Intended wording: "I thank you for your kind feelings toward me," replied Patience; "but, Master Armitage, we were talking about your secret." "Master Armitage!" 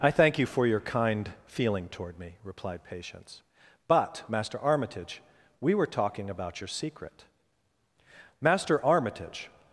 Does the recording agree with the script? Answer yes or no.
no